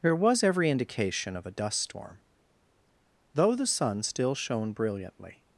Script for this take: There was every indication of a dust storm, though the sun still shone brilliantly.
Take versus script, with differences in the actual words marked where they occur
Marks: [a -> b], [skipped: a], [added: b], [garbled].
There was every indication of a dust storm, though the sun still shone brilliantly.